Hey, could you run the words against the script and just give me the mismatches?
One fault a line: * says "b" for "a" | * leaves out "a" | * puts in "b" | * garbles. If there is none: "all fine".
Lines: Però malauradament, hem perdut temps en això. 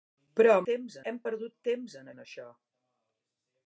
* says "temps" for "malauradament"
* puts in "en"